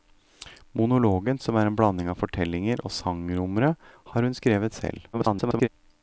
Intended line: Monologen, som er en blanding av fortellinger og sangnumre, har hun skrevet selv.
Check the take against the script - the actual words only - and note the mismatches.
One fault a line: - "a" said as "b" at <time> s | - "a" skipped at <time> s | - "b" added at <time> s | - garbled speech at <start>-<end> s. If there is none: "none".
- garbled speech at 5.1-5.7 s